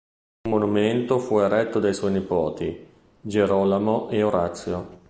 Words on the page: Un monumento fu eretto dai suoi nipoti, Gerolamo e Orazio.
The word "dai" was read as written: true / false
true